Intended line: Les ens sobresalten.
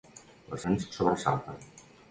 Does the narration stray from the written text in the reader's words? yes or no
no